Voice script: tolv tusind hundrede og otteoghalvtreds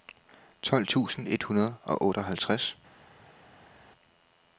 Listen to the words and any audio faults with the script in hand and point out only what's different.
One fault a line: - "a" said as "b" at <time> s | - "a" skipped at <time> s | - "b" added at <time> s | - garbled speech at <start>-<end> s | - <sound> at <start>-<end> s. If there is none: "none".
- "et" added at 1.3 s